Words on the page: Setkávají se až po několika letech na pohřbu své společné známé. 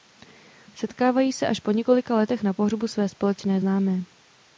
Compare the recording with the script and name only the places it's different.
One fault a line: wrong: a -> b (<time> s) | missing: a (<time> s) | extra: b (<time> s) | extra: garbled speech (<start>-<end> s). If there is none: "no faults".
no faults